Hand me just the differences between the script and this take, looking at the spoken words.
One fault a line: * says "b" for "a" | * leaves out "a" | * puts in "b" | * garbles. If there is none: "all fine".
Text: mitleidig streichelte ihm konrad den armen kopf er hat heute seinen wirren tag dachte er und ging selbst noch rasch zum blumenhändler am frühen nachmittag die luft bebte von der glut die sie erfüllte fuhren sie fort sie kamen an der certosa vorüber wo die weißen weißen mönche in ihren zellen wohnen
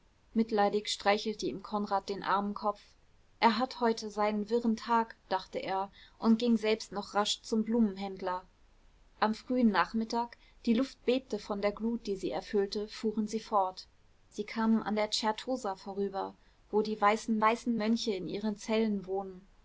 all fine